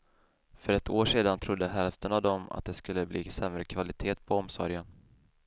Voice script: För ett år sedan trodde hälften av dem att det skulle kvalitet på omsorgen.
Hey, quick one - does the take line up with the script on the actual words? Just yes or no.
no